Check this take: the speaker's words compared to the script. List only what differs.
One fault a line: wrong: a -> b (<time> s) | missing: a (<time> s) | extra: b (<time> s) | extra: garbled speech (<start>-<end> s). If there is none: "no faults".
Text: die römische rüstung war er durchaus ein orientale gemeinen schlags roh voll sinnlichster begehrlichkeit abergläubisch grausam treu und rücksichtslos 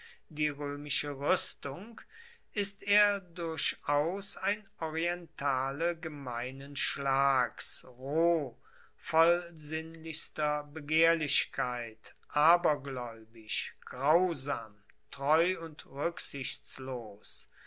wrong: war -> ist (2.5 s)